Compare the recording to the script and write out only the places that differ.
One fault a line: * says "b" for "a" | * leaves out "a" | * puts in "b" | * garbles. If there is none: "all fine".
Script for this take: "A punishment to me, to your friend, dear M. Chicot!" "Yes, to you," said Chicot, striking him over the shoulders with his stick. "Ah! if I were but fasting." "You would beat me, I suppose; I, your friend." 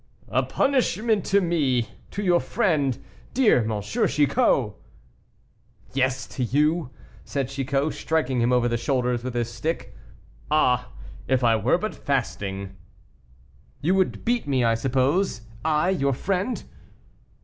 all fine